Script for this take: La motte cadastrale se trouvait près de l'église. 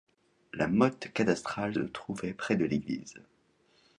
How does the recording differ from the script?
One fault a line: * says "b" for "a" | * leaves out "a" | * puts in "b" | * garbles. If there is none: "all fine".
* leaves out "se"